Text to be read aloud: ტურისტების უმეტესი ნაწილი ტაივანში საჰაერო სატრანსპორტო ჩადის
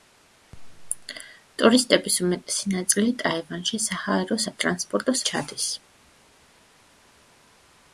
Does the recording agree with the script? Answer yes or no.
yes